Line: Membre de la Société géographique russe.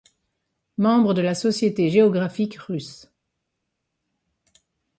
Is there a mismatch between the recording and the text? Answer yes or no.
no